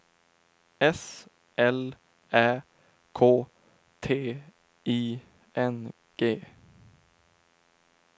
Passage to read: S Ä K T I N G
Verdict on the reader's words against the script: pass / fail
fail